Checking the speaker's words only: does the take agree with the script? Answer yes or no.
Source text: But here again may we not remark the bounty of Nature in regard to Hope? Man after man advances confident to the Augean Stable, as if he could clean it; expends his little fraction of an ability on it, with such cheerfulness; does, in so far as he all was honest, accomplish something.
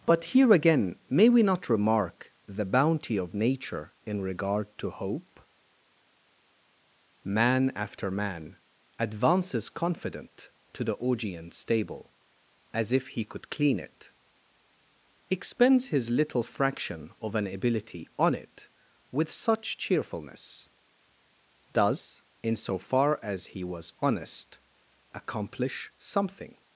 no